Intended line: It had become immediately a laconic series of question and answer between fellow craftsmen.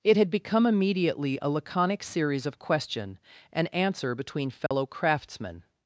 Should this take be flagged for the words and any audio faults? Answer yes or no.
yes